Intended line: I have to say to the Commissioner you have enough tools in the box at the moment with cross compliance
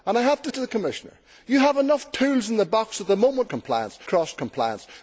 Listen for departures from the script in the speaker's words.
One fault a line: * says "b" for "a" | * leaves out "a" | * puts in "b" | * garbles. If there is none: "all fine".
* leaves out "say"
* says "compliance" for "with"